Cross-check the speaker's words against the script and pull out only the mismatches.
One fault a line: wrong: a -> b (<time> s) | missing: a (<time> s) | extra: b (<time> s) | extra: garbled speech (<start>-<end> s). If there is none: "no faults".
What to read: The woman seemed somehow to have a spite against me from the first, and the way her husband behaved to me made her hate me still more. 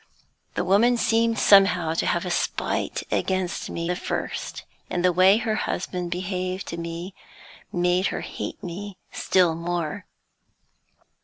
missing: from (3.9 s)